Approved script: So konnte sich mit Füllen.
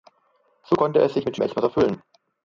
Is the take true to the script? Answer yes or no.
no